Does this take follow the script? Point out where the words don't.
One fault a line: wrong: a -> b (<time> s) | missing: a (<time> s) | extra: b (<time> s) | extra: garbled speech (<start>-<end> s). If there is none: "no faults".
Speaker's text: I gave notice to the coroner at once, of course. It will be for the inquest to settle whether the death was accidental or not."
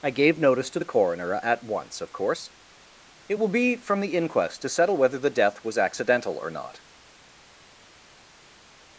wrong: for -> from (3.8 s)